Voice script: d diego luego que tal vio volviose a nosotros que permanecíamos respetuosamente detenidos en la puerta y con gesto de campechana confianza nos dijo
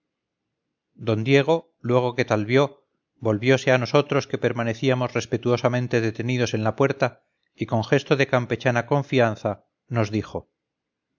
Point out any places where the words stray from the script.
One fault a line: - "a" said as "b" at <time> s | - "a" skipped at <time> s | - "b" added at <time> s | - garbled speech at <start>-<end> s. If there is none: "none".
none